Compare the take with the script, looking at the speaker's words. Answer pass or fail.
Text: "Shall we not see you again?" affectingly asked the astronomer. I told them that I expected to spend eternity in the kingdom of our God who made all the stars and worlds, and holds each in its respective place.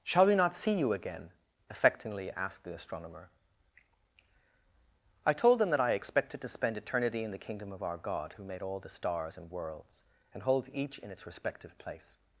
pass